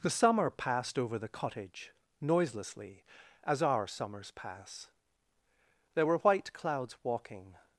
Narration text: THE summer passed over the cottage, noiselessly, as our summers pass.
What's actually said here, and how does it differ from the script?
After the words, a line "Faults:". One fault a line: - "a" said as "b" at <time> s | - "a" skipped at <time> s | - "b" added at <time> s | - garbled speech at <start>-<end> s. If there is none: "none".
THE summer passed over the cottage, noiselessly, as our summers pass. There were white clouds walking
Faults:
- "There were white clouds walking" added at 5.9 s